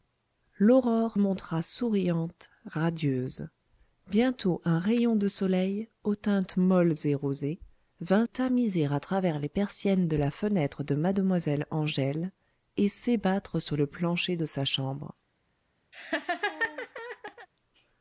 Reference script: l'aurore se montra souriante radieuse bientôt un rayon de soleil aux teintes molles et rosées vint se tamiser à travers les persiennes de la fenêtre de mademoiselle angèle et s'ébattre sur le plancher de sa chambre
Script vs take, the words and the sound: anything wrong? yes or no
yes